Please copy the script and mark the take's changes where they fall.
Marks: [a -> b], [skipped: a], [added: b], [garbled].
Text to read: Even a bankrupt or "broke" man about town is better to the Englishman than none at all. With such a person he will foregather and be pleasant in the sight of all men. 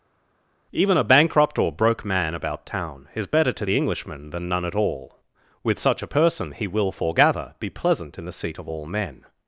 Even a bankrupt or "broke" man about town is better to the Englishman than none at all. With such a person he will foregather [skipped: and] be pleasant in the [sight -> seat] of all men.